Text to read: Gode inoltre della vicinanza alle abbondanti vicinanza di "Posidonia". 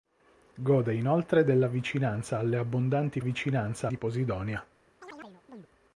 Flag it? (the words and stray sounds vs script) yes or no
yes